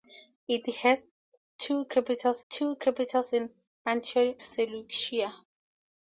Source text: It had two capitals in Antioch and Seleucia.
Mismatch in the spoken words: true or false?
true